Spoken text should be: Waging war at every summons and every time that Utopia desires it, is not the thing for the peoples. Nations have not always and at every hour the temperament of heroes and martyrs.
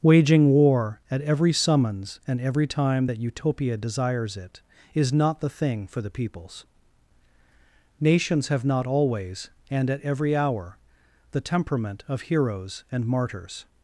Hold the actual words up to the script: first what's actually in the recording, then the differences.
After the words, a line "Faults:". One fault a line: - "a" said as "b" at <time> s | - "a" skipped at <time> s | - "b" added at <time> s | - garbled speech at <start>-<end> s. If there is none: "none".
Waging war at every summons and every time that Utopia desires it, is not the thing for the peoples. Nations have not always and at every hour the temperament of heroes and martyrs.
Faults:
none